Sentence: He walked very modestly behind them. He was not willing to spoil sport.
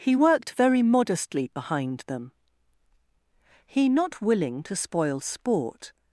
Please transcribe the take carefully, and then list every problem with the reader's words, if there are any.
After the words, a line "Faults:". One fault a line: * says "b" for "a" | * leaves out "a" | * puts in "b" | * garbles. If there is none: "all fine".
He worked very modestly behind them. He not willing to spoil sport.
Faults:
* says "worked" for "walked"
* leaves out "was"